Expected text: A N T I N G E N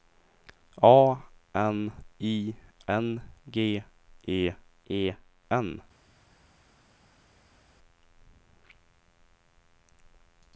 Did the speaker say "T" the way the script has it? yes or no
no